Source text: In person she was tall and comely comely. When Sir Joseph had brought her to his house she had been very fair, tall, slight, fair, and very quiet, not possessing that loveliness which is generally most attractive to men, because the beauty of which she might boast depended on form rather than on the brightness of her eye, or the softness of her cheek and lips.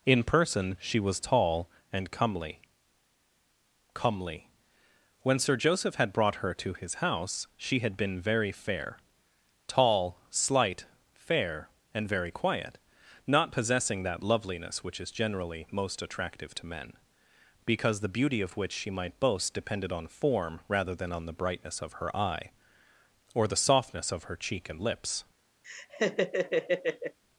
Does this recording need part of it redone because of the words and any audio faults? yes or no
yes